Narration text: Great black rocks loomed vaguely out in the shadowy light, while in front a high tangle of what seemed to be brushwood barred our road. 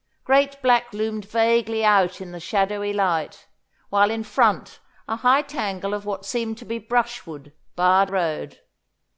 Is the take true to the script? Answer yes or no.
no